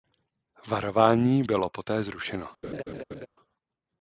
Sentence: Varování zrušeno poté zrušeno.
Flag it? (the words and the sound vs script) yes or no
yes